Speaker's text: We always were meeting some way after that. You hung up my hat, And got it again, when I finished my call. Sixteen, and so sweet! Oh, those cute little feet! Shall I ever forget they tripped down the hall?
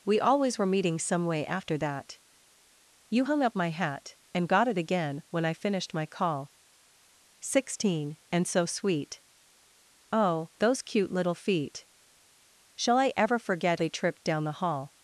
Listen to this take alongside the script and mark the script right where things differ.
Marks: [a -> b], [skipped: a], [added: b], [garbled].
We always were meeting some way after that. You hung up my hat, And got it again, when I finished my call. Sixteen, and so sweet! Oh, those cute little feet! Shall I ever forget they tripped down the hall?